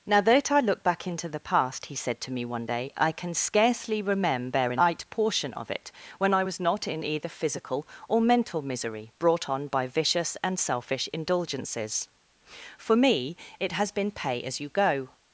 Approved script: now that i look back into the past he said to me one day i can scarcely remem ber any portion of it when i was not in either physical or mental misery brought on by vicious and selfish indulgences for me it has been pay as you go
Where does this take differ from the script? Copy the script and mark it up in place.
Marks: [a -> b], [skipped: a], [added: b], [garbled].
now that i look back into the past he said to me one day i can scarcely [remem ber any -> remember a night] portion of it when i was not in either physical or mental misery brought on by vicious and selfish indulgences for me it has been pay as you go